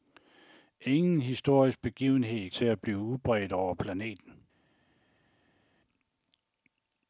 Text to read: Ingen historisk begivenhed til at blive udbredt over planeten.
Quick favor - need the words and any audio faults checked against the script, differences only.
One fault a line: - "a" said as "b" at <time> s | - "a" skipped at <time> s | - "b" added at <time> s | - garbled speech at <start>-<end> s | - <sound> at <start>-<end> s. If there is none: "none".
none